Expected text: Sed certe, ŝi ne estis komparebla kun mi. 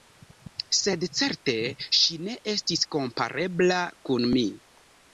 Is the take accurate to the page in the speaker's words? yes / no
yes